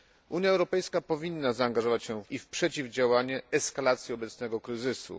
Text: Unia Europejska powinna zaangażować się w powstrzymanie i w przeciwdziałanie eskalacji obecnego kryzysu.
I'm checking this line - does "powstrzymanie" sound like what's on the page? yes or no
no